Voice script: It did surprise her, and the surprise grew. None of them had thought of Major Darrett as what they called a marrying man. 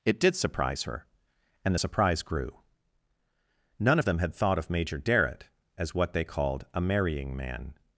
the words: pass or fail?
pass